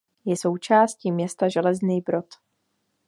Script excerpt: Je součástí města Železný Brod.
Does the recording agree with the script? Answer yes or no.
yes